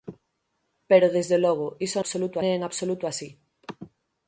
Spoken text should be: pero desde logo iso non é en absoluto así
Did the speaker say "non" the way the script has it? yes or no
no